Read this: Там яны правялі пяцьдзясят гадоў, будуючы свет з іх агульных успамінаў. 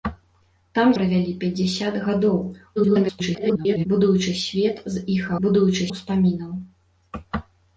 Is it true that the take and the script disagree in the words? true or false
true